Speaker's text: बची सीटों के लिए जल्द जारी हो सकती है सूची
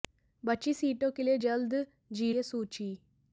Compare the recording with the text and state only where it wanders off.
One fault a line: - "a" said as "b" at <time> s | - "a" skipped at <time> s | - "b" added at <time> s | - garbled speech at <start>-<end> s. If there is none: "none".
- "हो सकती" skipped at 2.3 s